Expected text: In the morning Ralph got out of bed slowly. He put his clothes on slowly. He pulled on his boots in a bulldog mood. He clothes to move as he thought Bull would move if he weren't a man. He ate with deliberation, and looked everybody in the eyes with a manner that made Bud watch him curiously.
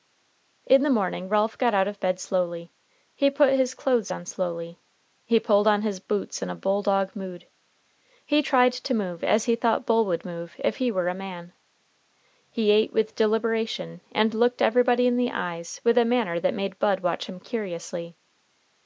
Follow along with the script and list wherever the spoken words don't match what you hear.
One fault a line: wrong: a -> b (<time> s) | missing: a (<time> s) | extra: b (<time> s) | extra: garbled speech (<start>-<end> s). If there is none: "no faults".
wrong: clothes -> tried (8.4 s)
wrong: weren't -> were (10.9 s)